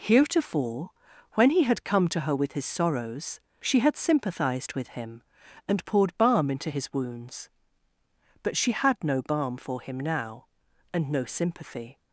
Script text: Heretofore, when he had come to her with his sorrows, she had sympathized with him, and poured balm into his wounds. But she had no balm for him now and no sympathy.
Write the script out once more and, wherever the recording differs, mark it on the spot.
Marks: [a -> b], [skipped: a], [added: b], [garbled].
Heretofore, when he had come to her with his sorrows, she had sympathized with him, and poured balm into his wounds. But she had no balm for him now and no sympathy.